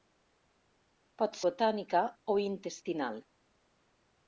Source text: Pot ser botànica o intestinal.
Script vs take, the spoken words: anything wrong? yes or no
yes